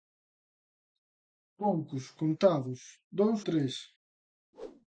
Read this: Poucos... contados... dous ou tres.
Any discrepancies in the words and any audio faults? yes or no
yes